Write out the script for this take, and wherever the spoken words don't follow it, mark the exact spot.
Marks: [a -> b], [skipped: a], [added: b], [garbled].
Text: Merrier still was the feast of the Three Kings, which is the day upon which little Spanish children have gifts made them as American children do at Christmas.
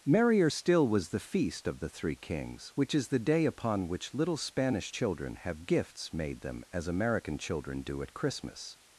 Merrier still was the feast of the Three Kings, which is the day upon which little Spanish children have gifts made them as American children do at Christmas.